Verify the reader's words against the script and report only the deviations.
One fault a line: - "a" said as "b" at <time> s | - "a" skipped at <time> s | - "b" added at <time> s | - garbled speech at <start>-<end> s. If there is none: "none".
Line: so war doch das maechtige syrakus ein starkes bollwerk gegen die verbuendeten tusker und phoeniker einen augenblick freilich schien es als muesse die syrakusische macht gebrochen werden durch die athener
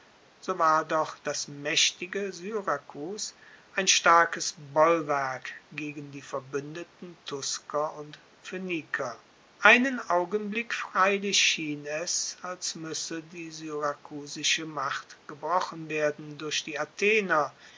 none